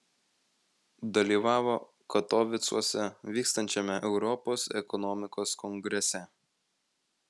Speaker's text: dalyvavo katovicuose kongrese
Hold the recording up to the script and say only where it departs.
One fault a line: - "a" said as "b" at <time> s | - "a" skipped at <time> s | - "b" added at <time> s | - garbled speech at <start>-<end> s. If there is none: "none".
- "vykstančiame europos ekonomikos" added at 3.4 s